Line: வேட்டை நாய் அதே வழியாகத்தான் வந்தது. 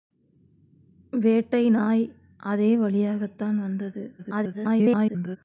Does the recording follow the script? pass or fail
fail